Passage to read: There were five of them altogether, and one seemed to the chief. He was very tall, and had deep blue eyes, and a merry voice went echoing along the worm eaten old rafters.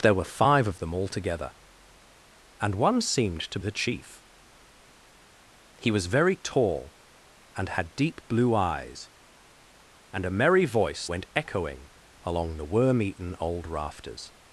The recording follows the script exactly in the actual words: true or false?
true